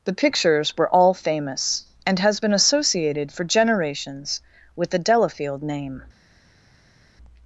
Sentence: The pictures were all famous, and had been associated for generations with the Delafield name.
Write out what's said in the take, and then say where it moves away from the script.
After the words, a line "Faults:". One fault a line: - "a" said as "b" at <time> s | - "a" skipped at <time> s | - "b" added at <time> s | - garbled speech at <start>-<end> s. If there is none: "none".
The pictures were all famous, and has been associated for generations with the Delafield name.
Faults:
- "had" said as "has" at 2.2 s